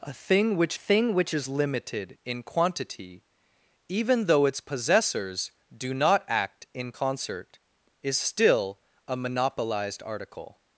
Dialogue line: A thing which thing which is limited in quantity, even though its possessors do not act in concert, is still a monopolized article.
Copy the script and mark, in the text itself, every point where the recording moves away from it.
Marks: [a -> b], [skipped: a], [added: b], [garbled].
A thing which thing which is limited in quantity, even though its possessors do not act in concert, is still a monopolized article.